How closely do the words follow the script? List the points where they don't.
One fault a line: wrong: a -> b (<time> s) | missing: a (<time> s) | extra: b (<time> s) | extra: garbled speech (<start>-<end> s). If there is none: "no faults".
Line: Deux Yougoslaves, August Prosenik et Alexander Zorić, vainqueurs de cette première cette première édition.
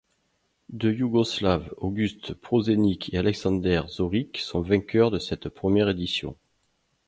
extra: sont (4.4 s)
missing: cette première (5.9 s)